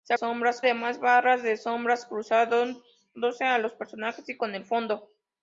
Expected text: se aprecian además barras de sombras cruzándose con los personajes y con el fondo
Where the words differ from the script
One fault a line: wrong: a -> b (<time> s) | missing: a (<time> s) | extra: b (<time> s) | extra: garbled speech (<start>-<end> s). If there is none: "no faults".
wrong: aprecian -> sombras (0.1 s)